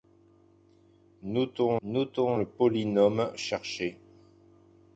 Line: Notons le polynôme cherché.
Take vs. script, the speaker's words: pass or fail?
fail